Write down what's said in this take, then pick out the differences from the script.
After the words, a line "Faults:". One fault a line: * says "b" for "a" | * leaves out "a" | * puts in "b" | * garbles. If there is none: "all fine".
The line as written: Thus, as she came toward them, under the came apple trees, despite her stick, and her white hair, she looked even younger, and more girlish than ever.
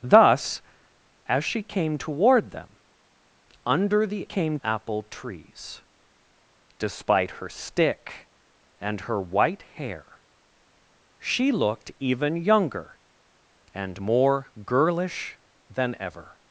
Thus, as she came toward them, under the came apple trees, despite her stick, and her white hair, she looked even younger, and more girlish than ever.
Faults:
all fine